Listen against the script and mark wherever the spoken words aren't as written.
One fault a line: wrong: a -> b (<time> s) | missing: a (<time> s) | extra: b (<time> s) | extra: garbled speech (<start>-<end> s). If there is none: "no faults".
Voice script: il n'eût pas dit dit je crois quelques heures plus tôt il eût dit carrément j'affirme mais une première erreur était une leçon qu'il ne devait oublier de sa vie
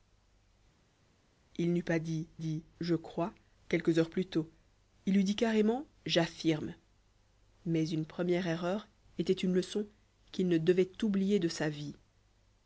no faults